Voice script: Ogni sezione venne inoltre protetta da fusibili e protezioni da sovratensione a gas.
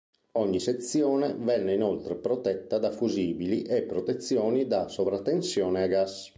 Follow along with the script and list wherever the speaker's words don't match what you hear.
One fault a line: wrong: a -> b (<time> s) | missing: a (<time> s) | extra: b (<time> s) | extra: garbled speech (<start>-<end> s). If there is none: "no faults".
no faults